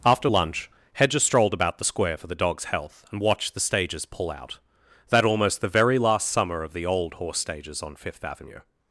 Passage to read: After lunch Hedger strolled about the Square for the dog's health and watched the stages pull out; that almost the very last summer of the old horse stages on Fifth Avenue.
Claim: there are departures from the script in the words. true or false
false